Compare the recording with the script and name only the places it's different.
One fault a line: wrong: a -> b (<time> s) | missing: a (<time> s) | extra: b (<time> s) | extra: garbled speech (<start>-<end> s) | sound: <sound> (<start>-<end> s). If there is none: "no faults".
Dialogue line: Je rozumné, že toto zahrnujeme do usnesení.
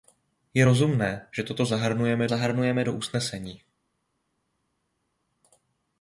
extra: zahrnujeme (2.3 s)